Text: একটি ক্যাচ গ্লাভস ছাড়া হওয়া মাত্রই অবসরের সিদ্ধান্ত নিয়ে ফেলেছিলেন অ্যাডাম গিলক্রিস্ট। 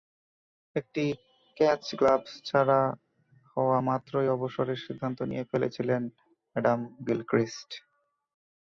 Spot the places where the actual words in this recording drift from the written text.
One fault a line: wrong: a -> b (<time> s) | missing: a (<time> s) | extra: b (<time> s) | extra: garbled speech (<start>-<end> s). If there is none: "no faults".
no faults